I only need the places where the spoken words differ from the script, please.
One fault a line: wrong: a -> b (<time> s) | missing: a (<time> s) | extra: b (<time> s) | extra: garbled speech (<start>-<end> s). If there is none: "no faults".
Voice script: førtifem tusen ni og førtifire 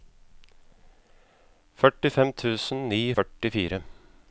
no faults